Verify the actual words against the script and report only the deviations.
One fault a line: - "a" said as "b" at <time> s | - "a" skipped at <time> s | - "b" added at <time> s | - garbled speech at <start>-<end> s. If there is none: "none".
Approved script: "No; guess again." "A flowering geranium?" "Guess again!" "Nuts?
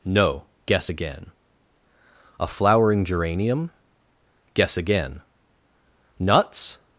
none